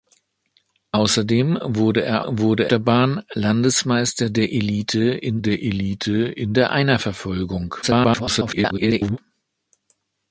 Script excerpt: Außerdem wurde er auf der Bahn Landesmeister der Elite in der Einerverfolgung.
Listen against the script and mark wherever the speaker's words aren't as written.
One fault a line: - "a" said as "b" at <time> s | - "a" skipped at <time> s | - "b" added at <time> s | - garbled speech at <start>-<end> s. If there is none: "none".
- "auf" said as "wurde" at 2.2 s
- "Elite in der" added at 5.6 s
- garbled speech at 7.8-9.2 s